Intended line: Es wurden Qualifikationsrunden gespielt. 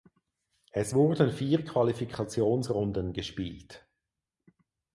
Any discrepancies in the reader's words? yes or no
yes